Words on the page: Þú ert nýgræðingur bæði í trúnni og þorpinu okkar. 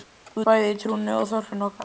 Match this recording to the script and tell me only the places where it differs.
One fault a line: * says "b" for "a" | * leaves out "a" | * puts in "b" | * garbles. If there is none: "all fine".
* leaves out "ert nýgræðingur"